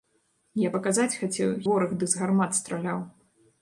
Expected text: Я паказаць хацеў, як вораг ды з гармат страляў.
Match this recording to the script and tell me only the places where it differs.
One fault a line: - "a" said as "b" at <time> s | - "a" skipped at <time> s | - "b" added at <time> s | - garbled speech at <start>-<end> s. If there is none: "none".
- "як" skipped at 1.5 s